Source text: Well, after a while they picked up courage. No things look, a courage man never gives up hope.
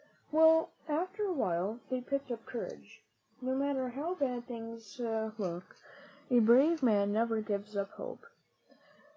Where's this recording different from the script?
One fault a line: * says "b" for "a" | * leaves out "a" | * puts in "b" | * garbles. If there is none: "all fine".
* puts in "matter how bad"
* says "brave" for "courage"